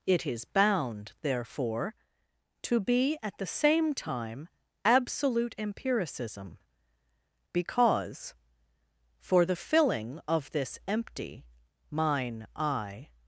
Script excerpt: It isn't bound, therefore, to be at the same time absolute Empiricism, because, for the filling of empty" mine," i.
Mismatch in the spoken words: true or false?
true